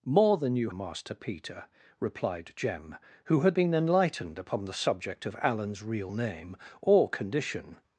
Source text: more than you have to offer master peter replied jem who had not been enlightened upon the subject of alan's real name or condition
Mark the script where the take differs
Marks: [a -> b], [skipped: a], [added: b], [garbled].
more than you [skipped: have to offer] master peter replied jem who had [skipped: not] been enlightened upon the subject of alan's real name or condition